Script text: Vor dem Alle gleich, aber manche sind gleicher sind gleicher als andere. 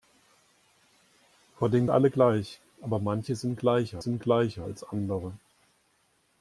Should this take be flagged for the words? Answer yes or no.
no